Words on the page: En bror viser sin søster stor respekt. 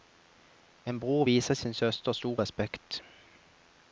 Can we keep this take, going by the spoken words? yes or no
yes